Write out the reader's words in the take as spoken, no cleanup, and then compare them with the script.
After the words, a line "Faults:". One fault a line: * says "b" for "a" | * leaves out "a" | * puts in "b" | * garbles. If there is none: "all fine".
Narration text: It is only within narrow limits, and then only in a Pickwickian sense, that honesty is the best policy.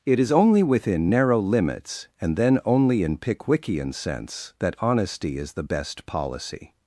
It is only within narrow limits, and then only in Pickwickian sense, that honesty is the best policy.
Faults:
* leaves out "a"